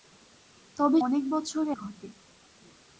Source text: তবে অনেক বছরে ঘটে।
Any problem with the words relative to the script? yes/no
no